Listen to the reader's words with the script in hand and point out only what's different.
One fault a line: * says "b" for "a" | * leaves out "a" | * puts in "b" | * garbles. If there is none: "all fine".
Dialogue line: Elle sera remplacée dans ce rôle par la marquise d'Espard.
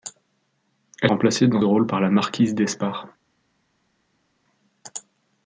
* leaves out "sera"
* leaves out "ce"